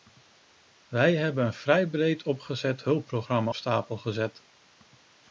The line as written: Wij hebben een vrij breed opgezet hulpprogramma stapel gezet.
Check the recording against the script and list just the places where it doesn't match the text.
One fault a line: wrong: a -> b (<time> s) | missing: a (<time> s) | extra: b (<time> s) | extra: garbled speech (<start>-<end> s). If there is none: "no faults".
no faults